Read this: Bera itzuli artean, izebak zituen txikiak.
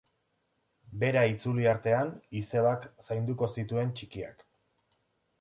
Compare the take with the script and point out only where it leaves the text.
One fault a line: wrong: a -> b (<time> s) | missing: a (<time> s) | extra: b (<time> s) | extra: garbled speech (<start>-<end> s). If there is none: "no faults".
extra: zainduko (3.1 s)